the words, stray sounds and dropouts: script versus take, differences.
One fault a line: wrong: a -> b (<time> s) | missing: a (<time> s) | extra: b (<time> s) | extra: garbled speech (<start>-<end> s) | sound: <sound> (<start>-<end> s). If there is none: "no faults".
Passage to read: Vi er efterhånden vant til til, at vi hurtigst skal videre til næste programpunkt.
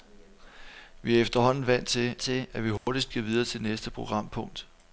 sound: dropout (2.8-2.9 s)